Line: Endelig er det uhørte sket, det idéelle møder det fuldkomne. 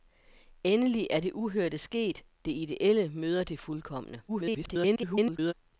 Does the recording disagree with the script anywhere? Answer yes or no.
yes